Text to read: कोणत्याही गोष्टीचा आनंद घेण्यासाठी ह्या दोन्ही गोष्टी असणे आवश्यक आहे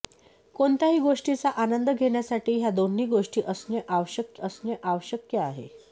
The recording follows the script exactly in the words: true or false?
false